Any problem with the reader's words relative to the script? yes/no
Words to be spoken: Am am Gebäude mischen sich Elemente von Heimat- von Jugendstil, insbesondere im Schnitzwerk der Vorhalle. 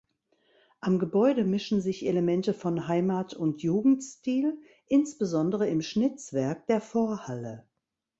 yes